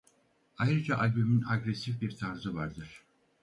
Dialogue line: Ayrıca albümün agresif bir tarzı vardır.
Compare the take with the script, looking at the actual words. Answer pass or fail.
pass